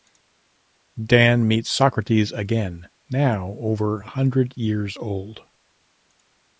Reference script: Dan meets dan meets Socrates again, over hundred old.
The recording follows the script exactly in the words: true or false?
false